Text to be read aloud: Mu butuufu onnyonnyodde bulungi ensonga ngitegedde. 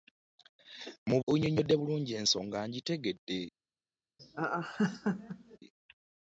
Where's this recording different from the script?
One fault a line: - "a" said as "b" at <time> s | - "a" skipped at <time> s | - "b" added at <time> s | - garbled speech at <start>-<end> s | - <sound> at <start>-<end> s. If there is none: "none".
- "butuufu" skipped at 1.2 s
- laugh at 4.2-5.6 s